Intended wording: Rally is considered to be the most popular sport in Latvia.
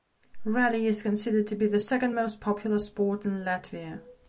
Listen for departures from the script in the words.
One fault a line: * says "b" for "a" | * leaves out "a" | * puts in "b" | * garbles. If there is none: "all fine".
* puts in "second"